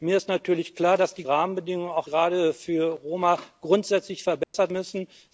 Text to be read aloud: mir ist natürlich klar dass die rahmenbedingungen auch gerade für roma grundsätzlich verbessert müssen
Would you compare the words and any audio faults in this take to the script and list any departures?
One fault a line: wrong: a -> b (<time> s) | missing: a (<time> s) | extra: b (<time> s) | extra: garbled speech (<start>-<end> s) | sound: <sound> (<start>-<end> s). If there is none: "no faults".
sound: dropout (4.4-4.5 s)